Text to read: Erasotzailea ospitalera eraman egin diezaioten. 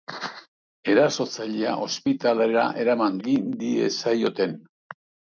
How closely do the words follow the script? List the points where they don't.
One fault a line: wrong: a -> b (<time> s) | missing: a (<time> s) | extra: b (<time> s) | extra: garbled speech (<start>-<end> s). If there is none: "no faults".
no faults